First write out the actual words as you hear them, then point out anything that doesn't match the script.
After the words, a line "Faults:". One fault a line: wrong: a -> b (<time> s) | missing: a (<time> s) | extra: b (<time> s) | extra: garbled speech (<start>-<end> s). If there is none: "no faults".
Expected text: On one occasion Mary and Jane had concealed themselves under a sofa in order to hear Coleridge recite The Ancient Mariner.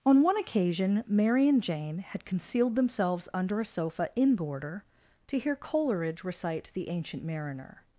On one occasion Mary and Jane had concealed themselves under a sofa in border to hear Coleridge recite The Ancient Mariner.
Faults:
wrong: order -> border (4.3 s)